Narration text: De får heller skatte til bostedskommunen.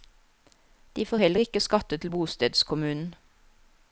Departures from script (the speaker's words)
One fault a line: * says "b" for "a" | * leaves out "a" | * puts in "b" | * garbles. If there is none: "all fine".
* puts in "ikke"